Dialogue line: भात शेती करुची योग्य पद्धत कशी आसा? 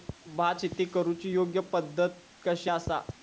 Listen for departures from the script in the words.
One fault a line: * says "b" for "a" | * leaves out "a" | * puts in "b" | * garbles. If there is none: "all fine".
all fine